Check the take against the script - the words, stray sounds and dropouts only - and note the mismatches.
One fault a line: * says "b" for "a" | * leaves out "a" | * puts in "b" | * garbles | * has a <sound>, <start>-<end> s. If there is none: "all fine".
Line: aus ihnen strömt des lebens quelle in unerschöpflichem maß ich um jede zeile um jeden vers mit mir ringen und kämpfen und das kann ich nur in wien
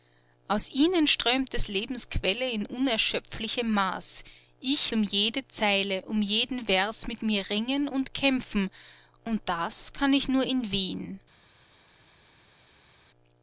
all fine